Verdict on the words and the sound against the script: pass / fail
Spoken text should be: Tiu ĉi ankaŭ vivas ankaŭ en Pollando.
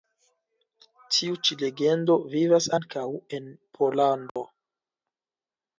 fail